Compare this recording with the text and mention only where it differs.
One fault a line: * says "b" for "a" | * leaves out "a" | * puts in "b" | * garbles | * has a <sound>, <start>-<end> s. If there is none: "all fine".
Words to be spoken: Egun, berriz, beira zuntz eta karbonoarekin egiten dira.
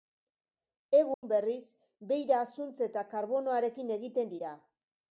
* has a dropout, 1.1-1.2 s